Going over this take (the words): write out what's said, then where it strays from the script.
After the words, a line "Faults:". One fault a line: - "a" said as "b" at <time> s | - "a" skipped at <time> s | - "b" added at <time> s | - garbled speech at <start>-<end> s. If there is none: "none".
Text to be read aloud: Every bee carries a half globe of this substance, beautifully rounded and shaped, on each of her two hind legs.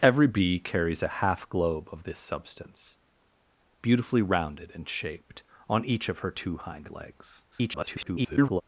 Every bee carries a half globe of this substance, beautifully rounded and shaped, on each of her two hind legs. [garbled]
Faults:
- garbled speech at 7.5-8.6 s